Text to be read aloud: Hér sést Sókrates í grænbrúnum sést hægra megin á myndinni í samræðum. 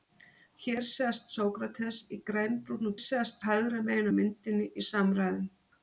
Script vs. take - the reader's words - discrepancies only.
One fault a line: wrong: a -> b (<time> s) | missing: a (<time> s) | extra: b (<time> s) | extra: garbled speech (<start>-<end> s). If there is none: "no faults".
no faults